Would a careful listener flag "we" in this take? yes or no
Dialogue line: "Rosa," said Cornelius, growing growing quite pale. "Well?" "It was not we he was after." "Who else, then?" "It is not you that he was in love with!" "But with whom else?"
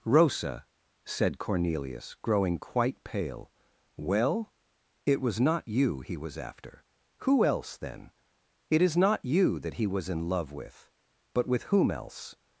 yes